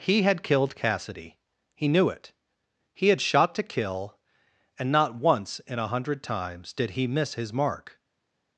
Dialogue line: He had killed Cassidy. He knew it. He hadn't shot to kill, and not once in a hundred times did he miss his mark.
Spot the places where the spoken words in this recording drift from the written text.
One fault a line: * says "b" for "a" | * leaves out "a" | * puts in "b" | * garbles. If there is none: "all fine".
* says "had" for "hadn't"